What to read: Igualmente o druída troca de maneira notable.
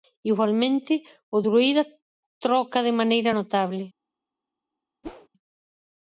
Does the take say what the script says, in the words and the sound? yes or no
no